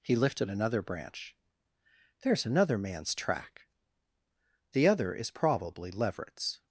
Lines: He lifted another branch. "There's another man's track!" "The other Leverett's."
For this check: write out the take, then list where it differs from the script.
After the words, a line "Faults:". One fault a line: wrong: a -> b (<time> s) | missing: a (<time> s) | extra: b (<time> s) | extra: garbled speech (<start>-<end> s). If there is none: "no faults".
He lifted another branch. "There's another man's track!" "The other is probably Leverett's."
Faults:
extra: is probably (5.1 s)